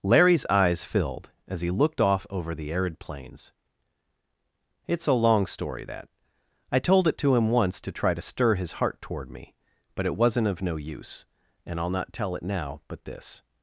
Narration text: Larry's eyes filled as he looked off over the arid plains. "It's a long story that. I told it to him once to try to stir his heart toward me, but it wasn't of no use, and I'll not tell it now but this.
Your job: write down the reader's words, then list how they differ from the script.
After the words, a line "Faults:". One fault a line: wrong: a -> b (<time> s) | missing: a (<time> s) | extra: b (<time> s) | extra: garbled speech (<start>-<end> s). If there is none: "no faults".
Larry's eyes filled as he looked off over the arid plains. "It's a long story that. I told it to him once to try to stir his heart toward me, but it wasn't of no use, and I'll not tell it now but this.
Faults:
no faults